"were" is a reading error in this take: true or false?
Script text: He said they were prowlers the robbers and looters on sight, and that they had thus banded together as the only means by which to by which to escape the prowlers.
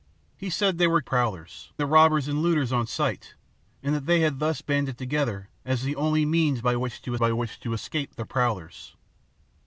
false